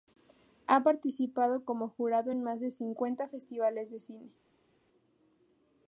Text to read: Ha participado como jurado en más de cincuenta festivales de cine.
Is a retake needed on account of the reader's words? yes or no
no